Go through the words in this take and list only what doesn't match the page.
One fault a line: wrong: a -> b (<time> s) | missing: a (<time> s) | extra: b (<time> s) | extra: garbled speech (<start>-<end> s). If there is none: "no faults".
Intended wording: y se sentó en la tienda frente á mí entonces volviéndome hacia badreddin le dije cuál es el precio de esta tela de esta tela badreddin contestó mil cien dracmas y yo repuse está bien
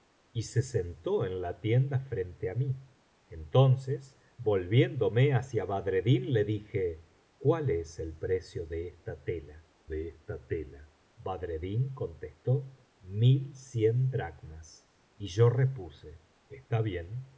no faults